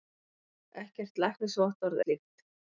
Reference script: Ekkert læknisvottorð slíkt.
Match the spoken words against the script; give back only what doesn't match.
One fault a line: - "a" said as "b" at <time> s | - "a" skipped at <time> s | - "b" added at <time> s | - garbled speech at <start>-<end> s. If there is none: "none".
none